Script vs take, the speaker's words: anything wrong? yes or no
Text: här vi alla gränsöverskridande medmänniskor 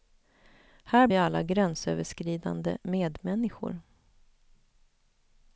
no